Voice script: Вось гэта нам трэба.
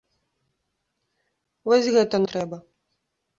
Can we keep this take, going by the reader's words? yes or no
no